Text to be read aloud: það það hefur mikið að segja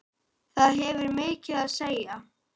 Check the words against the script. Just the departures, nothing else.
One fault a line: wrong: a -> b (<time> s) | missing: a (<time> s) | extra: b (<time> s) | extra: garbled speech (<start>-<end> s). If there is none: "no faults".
missing: það (0.8 s)